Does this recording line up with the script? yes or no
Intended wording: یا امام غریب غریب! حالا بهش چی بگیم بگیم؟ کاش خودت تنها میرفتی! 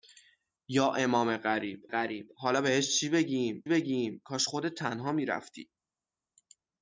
yes